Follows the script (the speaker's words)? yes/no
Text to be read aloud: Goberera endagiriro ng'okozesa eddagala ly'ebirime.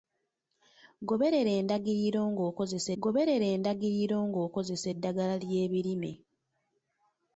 no